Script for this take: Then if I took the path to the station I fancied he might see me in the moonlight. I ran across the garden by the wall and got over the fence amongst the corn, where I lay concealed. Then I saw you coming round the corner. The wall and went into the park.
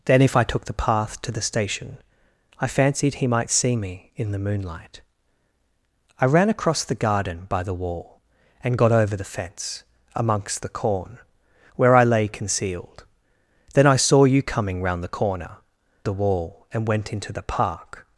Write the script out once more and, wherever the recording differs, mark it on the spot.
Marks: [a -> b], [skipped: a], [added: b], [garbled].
Then if I took the path to the station I fancied he might see me in the moonlight. I ran across the garden by the wall and got over the fence amongst the corn, where I lay concealed. Then I saw you coming round the corner. The wall and went into the park.